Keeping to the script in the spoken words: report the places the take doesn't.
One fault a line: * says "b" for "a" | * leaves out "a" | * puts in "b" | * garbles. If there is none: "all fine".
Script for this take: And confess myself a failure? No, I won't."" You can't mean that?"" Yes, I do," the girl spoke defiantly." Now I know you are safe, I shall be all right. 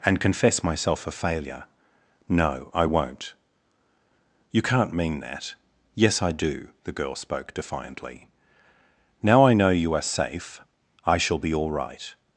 all fine